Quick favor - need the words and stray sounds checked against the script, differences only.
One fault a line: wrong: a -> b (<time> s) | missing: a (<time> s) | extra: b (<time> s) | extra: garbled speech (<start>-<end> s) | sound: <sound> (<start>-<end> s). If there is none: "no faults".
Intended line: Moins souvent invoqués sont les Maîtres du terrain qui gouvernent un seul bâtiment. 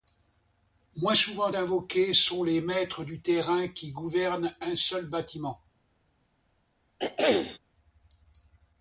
sound: throat clearing (7.0-7.6 s)